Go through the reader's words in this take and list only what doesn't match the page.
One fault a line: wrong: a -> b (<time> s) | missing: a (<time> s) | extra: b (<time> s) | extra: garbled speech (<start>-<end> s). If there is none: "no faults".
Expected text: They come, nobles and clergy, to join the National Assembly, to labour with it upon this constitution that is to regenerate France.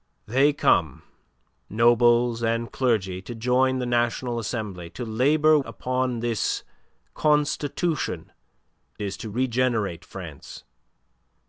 missing: with it (5.6 s)
missing: that (8.3 s)